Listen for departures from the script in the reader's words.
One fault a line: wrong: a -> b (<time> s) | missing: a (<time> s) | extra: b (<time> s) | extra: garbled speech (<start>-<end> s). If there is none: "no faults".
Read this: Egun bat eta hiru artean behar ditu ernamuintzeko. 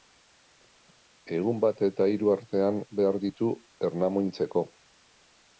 no faults